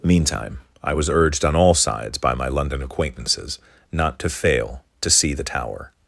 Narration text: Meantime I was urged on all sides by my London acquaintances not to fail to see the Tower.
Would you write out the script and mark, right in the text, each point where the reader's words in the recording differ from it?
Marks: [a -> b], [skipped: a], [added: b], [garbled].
Meantime I was urged on all sides by my London acquaintances not to fail to see the Tower.